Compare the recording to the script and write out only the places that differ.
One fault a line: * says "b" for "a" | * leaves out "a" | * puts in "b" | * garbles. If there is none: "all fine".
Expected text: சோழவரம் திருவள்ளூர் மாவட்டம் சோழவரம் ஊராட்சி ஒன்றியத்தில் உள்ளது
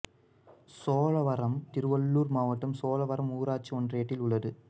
all fine